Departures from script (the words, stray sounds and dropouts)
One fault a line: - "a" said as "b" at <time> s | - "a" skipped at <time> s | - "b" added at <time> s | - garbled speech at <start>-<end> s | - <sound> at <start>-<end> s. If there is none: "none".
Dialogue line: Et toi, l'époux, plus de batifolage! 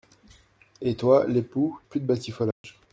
- dropout at 2.5-2.6 s